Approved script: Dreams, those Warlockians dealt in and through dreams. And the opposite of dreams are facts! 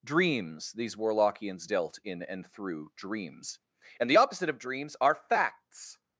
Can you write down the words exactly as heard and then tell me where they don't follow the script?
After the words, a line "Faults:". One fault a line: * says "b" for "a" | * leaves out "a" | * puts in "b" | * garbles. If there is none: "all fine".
Dreams, these Warlockians dealt in and through dreams. And the opposite of dreams are facts!
Faults:
* says "these" for "those"